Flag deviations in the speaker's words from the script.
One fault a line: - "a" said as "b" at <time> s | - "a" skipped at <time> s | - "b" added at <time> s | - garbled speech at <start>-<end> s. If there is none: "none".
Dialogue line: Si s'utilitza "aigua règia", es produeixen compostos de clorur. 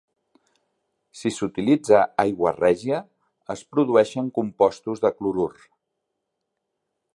none